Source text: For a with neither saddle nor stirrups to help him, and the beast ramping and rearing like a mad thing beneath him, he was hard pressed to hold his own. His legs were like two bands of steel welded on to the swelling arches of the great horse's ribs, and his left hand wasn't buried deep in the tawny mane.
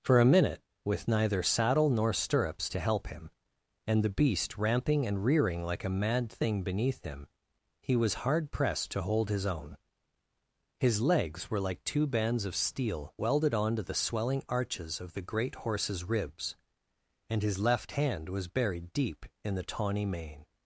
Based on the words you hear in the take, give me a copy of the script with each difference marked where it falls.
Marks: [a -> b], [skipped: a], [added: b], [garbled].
For a [added: minute] with neither saddle nor stirrups to help him, and the beast ramping and rearing like a mad thing beneath him, he was hard pressed to hold his own. His legs were like two bands of steel welded on to the swelling arches of the great horse's ribs, and his left hand [wasn't -> was] buried deep in the tawny mane.